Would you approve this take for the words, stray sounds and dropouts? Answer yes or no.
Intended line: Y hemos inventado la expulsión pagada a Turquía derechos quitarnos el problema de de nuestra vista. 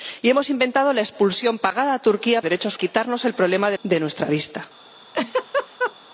no